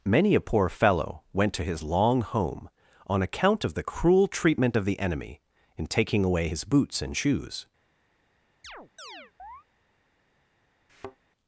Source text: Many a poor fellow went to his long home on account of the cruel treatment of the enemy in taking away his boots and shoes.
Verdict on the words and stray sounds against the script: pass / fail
fail